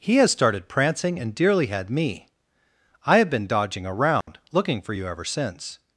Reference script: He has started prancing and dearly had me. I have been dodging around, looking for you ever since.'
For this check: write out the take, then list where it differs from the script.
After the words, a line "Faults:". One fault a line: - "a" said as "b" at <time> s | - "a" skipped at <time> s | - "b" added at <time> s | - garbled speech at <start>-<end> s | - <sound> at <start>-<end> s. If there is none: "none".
He has started prancing and dearly had me. I have been dodging around, looking for you ever since.'
Faults:
- dropout at 4.2-4.3 s